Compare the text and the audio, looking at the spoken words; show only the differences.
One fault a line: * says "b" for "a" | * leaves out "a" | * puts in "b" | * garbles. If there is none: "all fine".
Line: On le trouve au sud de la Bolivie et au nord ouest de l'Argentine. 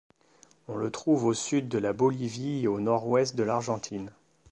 all fine